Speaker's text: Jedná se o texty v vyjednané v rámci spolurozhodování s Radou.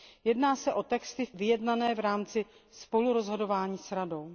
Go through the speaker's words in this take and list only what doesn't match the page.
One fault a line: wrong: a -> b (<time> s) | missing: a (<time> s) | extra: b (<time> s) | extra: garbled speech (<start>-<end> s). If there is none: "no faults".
no faults